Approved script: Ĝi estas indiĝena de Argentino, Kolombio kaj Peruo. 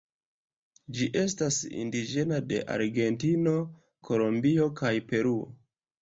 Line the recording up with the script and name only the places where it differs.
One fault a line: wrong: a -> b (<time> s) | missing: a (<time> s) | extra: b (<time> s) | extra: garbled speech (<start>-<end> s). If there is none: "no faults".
no faults